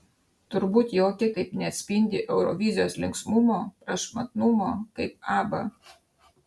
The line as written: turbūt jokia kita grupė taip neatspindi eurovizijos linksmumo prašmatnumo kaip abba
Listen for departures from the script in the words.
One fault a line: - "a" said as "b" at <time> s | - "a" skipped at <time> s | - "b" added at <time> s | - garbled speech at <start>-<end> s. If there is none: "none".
- "kita grupė" skipped at 1.3 s